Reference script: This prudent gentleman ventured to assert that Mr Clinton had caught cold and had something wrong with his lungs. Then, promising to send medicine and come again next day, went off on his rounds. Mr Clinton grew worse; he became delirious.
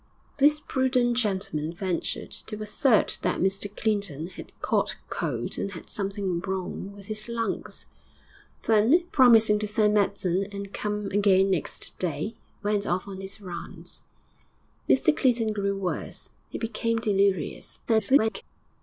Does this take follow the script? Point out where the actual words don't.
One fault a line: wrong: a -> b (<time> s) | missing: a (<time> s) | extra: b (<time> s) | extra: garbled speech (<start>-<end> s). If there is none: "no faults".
extra: garbled speech (17.9-18.4 s)